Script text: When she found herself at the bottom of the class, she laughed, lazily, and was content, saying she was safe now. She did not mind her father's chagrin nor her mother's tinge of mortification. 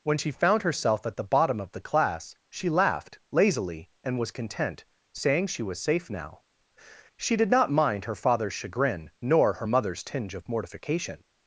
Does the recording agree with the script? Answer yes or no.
yes